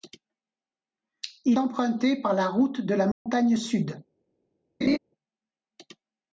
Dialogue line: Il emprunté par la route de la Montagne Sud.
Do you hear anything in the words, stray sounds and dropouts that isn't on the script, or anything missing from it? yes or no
yes